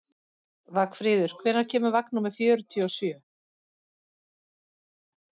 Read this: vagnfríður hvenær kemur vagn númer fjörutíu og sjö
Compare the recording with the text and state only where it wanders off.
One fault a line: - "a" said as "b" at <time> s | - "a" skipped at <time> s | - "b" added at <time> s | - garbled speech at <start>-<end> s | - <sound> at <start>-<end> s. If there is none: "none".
none